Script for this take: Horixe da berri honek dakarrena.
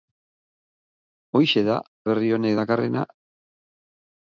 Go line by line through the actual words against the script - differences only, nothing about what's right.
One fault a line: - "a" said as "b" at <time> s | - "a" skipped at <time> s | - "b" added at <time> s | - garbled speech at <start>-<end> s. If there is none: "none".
none